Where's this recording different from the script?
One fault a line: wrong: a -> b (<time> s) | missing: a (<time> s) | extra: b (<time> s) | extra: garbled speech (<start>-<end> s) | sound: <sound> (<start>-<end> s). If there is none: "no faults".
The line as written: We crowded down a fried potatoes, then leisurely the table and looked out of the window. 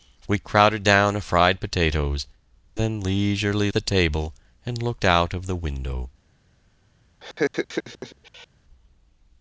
sound: laugh (7.2-8.5 s)